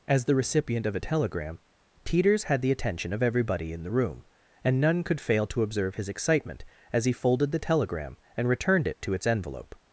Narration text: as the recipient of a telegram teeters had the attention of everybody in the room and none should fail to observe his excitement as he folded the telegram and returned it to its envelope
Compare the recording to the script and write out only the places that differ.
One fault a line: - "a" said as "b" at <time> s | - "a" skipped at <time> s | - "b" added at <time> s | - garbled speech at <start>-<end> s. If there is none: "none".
- "should" said as "could" at 5.0 s